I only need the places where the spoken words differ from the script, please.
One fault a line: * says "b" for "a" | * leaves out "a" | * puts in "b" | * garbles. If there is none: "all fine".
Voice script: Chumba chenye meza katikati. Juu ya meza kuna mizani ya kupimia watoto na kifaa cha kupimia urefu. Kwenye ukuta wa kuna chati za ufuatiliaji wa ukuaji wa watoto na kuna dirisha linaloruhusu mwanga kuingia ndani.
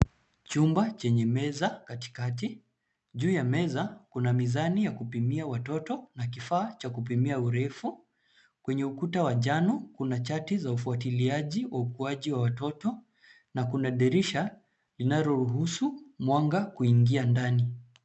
* puts in "njano"